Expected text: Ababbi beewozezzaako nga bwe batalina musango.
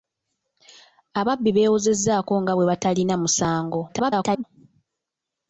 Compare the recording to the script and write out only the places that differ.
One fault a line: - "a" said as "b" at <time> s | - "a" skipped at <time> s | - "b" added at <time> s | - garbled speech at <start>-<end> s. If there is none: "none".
- garbled speech at 3.9-4.4 s